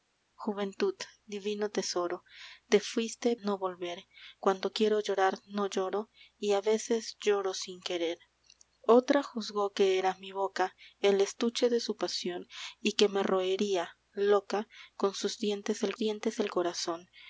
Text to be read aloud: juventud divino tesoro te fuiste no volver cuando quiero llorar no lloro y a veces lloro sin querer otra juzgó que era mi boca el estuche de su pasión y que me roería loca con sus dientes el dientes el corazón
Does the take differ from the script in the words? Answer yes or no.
no